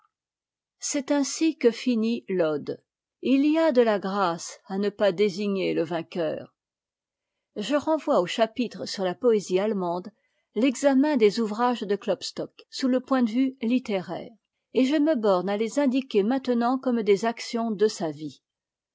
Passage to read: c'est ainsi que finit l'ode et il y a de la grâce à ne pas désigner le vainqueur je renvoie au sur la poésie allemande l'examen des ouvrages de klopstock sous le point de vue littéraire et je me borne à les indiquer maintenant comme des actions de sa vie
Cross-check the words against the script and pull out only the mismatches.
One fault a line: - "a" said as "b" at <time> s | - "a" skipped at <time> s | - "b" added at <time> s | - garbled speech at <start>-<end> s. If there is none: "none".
- "chapitre" added at 8.2 s